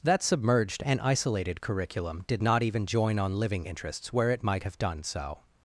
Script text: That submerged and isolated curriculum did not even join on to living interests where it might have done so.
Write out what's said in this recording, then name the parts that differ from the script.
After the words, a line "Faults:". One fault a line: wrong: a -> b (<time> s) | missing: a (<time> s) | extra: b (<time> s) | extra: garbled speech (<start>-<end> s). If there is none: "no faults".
That submerged and isolated curriculum did not even join on living interests where it might have done so.
Faults:
missing: to (3.4 s)